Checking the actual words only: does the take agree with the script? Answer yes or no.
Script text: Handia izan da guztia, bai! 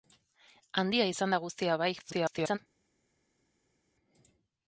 no